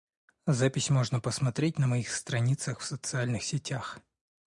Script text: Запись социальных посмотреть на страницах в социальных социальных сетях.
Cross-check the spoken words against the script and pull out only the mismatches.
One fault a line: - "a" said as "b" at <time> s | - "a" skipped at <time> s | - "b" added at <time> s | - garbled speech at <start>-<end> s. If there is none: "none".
- "социальных" said as "можно" at 0.9 s
- "моих" added at 1.9 s
- "социальных" skipped at 3.4 s